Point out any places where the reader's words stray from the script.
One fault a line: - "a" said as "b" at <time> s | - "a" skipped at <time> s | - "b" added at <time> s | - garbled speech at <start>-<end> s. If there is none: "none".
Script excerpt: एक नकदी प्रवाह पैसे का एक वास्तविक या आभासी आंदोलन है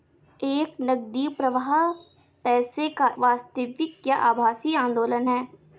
- "एक" skipped at 3.1 s